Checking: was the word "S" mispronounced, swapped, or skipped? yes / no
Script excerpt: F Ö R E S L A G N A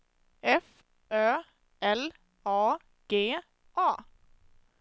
yes